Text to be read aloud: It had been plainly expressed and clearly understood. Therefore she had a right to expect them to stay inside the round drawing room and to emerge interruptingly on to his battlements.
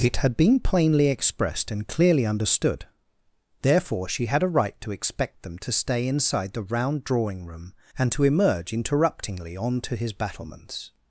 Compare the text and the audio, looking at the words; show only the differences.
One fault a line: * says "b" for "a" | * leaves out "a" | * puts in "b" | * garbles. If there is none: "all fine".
all fine